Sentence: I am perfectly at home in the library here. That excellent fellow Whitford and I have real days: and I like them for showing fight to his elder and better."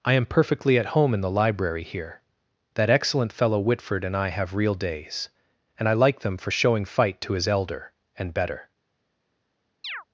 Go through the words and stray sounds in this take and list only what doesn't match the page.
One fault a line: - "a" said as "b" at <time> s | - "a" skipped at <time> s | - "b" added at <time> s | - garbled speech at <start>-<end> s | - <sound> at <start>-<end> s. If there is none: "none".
- chirp at 9.8-10.0 s